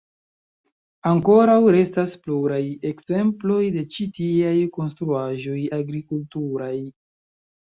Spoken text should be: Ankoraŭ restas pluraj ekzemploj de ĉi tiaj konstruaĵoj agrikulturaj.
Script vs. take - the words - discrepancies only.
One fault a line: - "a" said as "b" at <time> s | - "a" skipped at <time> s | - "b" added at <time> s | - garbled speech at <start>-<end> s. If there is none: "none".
none